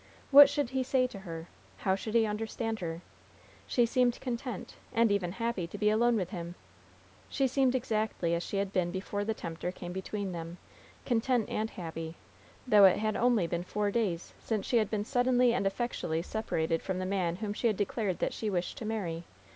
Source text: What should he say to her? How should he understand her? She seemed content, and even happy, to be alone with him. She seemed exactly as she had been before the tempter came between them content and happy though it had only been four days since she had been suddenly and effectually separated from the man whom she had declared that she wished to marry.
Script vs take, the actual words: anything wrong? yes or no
no